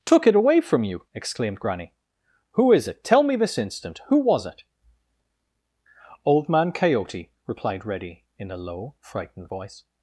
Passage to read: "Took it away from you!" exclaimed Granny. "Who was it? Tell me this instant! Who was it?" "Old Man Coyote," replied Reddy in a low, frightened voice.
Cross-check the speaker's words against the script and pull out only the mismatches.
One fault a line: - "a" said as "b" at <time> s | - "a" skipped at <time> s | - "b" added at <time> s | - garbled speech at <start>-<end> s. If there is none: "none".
- "was" said as "is" at 2.7 s